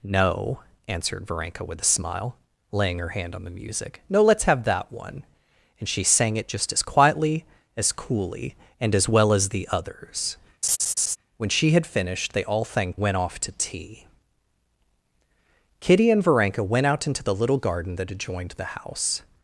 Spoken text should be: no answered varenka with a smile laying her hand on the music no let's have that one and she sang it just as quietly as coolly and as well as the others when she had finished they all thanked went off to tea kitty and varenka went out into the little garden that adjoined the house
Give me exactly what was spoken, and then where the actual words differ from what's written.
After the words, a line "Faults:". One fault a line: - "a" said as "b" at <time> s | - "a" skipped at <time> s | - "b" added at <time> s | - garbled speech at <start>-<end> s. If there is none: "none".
no answered varenka with a smile laying her hand on the music no let's have that one and she sang it just as quietly as coolly and as well as the others when she had finished they all thanked went off to tea kitty and varenka went out into the little garden that adjoined the house
Faults:
none